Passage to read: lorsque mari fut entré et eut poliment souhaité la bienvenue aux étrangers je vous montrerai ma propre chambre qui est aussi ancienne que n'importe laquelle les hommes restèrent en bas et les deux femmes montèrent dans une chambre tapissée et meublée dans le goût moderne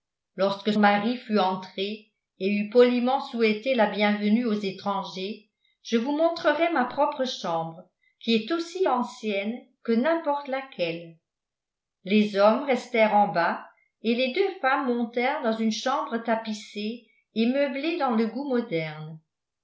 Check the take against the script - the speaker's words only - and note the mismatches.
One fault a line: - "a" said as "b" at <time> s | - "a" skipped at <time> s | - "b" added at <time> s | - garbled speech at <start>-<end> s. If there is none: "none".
none